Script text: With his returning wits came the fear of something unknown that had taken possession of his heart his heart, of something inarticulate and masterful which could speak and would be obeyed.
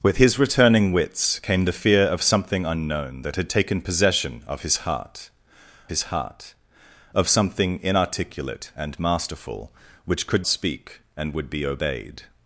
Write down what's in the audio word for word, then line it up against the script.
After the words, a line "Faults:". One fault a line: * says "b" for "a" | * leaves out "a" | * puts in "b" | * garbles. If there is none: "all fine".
With his returning wits came the fear of something unknown that had taken possession of his heart his heart, of something inarticulate and masterful which could speak and would be obeyed.
Faults:
all fine